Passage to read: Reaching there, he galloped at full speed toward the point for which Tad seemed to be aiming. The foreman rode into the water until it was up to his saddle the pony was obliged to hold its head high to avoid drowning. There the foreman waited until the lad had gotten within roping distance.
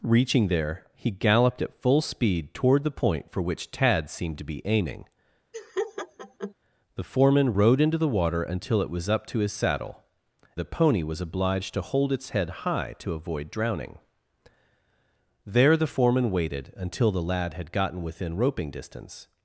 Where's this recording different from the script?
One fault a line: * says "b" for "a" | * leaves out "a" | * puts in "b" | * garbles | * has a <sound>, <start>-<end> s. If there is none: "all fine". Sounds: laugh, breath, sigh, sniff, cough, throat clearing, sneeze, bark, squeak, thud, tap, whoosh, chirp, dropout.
* has a laugh, 5.5-6.5 s